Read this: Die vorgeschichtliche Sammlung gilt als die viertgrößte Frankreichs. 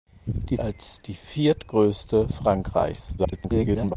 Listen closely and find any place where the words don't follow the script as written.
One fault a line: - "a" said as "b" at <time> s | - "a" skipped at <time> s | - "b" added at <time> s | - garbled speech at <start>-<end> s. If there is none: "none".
- "vorgeschichtliche Sammlung gilt" skipped at 0.6 s
- garbled speech at 3.2-3.9 s